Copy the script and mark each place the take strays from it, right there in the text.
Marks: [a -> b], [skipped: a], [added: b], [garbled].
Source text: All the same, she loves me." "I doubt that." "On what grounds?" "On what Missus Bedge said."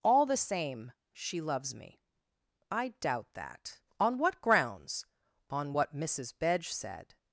All the same, she loves me." "I doubt that." "On what grounds?" "On what Missus Bedge said."